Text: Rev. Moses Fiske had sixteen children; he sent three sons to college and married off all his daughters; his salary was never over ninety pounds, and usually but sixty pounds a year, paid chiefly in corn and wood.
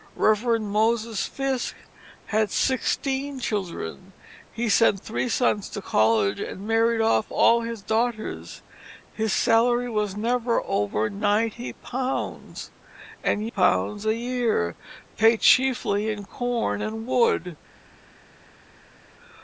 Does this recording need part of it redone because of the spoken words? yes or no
yes